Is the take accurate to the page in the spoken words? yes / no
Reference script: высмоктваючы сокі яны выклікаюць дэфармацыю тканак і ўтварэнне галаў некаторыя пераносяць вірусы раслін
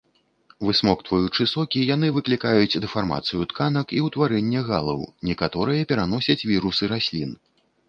yes